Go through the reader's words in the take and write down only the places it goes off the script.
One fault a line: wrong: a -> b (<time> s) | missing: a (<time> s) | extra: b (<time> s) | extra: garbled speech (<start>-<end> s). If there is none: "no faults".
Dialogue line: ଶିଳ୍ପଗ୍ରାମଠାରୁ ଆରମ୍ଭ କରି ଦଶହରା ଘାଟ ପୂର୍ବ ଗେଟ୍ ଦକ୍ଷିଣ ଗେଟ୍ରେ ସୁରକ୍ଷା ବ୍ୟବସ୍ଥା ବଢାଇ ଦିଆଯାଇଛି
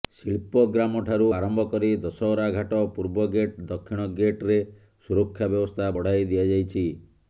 no faults